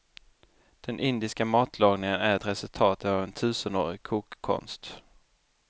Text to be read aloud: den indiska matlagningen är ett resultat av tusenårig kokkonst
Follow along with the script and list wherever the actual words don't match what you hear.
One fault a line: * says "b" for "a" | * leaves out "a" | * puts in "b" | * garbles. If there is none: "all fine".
* puts in "en"